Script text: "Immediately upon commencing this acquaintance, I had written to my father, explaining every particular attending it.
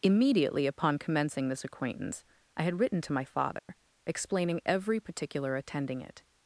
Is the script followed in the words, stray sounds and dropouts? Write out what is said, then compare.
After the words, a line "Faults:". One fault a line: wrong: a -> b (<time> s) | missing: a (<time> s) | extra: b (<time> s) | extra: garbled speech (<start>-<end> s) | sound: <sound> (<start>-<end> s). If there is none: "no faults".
"Immediately upon commencing this acquaintance, I had written to my father, explaining every particular attending it.
Faults:
sound: dropout (3.6-3.7 s)